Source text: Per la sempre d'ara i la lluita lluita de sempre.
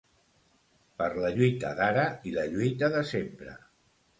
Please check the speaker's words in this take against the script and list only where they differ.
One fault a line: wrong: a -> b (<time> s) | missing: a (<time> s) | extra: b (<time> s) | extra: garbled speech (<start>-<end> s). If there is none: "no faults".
wrong: sempre -> lluita (1.4 s)
missing: lluita (2.9 s)